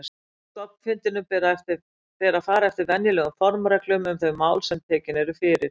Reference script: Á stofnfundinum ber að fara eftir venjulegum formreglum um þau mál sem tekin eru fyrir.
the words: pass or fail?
pass